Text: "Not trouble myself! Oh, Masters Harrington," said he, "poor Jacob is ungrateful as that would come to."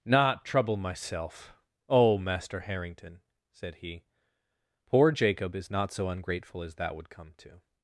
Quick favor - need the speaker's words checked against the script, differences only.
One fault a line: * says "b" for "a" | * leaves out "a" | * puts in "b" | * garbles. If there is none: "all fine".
* says "Master" for "Masters"
* puts in "not so"